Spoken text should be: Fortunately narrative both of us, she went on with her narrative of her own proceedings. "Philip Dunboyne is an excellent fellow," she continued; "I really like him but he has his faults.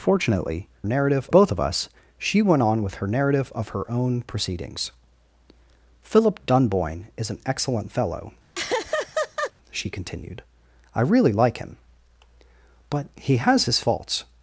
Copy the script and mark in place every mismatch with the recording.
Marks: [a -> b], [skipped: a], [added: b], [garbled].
Fortunately narrative both of us, she went on with her narrative of her own proceedings. "Philip Dunboyne is an excellent fellow," she continued; "I really like him but he has his faults.